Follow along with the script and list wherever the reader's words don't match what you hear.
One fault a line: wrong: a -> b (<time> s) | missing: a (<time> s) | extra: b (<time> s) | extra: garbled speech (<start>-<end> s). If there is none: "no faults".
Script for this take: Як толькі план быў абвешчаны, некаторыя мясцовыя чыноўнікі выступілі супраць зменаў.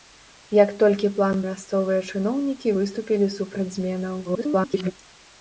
missing: быў абвешчаны некаторыя (1.4 s)
extra: garbled speech (4.2-4.9 s)